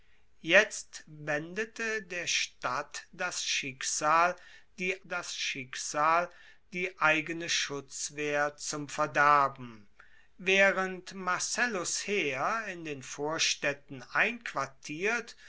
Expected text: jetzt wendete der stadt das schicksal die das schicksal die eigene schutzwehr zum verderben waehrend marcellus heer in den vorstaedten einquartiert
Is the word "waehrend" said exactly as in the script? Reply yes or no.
yes